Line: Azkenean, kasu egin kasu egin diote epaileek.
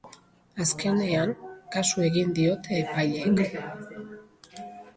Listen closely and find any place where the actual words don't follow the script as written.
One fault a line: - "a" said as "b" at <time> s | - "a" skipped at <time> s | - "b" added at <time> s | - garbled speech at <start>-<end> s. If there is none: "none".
- "kasu egin" skipped at 2.3 s